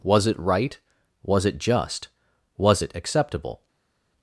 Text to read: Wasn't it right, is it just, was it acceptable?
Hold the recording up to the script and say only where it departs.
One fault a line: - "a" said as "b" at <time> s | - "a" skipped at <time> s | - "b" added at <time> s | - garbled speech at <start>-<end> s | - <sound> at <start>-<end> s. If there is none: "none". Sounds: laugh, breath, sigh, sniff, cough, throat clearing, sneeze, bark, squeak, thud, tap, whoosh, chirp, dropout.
- "Wasn't" said as "Was" at 0.0 s
- "is" said as "was" at 1.2 s